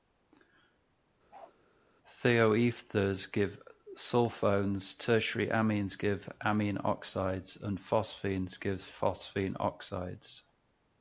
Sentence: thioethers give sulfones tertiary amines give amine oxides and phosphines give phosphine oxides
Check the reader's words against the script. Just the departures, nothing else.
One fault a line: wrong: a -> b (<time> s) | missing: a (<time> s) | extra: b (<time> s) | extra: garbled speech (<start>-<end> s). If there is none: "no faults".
no faults